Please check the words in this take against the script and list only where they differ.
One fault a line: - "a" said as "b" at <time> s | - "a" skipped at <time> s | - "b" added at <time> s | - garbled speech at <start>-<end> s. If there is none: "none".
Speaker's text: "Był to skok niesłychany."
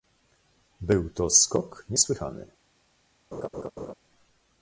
none